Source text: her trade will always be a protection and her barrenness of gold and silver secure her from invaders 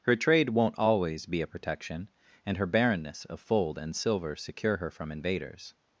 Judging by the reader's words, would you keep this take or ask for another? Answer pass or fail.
fail